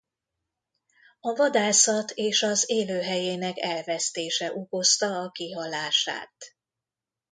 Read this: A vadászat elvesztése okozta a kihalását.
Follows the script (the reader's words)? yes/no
no